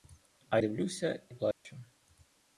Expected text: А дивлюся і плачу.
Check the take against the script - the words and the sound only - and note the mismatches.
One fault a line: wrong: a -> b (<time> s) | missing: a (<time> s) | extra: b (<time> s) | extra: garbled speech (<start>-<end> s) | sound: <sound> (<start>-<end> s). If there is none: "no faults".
sound: dropout (1.5-1.6 s)